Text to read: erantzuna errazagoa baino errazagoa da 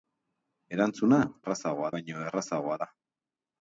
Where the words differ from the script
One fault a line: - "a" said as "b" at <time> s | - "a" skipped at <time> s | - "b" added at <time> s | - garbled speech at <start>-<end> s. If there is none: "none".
none